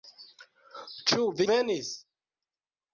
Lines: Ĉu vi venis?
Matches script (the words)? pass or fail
pass